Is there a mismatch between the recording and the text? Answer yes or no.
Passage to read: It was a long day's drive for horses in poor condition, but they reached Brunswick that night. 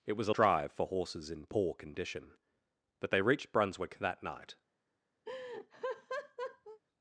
yes